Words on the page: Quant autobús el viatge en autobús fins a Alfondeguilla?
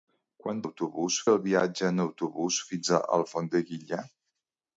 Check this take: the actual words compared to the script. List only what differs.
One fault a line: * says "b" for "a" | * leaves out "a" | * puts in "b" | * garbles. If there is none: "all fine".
all fine